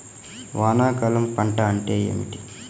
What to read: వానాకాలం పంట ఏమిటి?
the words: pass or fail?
fail